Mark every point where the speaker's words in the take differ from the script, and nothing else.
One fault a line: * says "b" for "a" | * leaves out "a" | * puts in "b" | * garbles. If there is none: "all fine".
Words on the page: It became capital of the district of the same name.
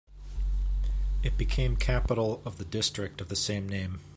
all fine